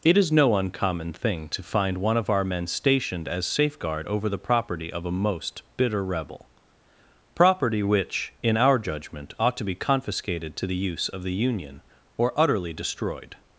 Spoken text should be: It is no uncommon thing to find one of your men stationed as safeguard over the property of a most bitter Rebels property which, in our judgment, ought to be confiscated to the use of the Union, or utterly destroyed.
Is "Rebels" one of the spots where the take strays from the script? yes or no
yes